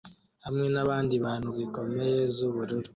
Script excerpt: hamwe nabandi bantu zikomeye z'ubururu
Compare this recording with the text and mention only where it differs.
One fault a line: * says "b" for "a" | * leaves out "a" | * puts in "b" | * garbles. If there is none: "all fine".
all fine